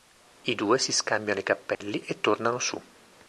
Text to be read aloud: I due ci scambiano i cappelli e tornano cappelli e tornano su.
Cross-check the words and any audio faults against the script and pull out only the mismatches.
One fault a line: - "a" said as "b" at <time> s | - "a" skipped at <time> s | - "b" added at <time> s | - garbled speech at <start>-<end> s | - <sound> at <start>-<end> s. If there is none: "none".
- "ci" said as "si" at 0.8 s
- dropout at 1.7-1.8 s
- "cappelli e tornano" skipped at 2.6 s